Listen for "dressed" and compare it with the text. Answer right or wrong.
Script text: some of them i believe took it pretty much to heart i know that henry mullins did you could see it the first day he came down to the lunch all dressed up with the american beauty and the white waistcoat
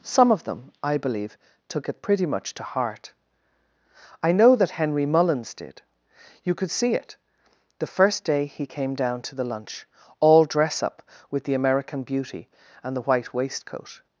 wrong